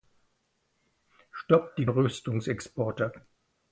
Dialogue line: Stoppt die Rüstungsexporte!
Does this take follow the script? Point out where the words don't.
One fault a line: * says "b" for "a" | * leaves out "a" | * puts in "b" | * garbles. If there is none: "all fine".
all fine